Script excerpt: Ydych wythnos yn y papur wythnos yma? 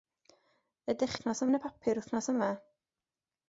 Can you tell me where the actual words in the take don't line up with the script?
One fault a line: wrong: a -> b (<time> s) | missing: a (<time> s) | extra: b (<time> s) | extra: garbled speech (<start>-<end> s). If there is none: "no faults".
no faults